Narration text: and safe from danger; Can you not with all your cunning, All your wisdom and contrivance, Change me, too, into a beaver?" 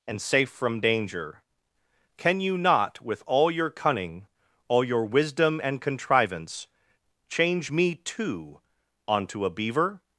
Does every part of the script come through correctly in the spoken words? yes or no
no